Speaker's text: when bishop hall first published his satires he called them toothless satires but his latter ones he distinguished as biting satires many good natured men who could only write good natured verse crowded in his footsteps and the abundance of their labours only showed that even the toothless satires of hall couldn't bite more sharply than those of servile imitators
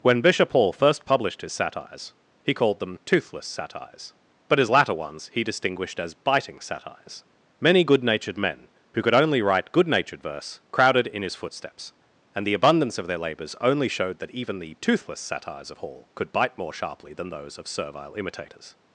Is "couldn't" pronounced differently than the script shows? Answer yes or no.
yes